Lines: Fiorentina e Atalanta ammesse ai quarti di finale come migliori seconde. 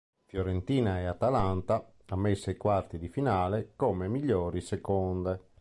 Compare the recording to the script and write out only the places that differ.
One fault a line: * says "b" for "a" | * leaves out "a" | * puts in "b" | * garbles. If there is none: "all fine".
all fine